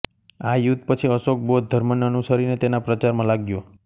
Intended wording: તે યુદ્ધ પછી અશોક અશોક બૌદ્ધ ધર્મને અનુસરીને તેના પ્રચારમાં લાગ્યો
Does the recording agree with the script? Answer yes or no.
no